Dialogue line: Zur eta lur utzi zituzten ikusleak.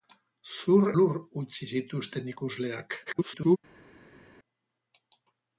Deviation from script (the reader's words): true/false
true